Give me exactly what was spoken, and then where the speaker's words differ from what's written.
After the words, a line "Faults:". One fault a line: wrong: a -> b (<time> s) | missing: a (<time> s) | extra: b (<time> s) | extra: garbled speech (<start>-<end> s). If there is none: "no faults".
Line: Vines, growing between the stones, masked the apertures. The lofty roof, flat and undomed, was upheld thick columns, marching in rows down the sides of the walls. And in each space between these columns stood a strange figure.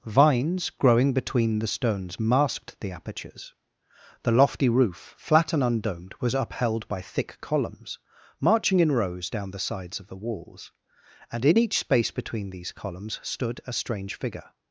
Vines, growing between the stones, masked the apertures. The lofty roof, flat and undomed, was upheld by thick columns, marching in rows down the sides of the walls. And in each space between these columns stood a strange figure.
Faults:
extra: by (6.9 s)